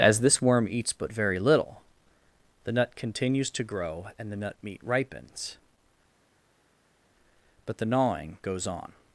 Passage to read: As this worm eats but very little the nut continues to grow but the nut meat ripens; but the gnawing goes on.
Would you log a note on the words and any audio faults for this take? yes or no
yes